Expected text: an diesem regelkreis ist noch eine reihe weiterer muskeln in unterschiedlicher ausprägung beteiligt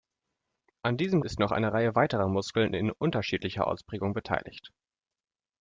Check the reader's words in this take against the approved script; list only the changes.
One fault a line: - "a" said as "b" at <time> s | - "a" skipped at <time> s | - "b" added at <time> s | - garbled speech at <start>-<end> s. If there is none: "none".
- "regelkreis" skipped at 1.2 s